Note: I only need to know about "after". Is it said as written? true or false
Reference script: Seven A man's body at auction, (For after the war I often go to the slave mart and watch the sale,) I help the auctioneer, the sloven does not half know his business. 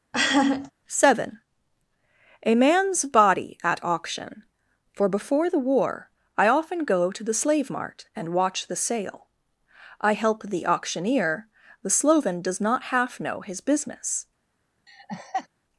false